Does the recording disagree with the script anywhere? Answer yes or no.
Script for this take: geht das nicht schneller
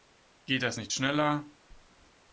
no